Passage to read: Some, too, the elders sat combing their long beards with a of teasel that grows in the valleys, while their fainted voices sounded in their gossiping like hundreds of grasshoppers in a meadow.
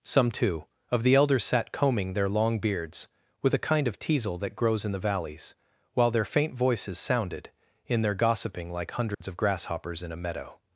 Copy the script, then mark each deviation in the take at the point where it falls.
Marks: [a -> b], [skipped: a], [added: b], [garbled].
Some, too, [added: of] the elders sat combing their long beards with a [added: kind] of teasel that grows in the valleys, while their [fainted -> faint] voices sounded in their gossiping like hundreds of grasshoppers in a meadow.